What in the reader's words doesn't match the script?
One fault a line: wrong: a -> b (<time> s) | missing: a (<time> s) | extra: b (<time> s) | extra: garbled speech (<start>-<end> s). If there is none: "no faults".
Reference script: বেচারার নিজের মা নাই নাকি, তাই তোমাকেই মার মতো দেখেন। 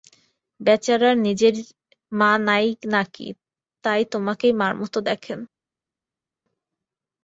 no faults